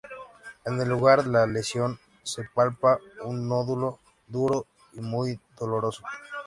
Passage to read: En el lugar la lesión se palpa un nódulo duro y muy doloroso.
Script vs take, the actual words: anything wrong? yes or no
no